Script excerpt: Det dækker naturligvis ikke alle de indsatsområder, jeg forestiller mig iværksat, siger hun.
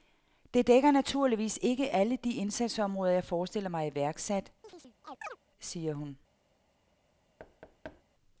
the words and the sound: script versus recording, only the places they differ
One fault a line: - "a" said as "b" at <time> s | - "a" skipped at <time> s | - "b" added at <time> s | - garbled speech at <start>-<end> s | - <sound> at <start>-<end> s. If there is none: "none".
- chirp at 4.6-5.4 s
- thud at 7.4-8.0 s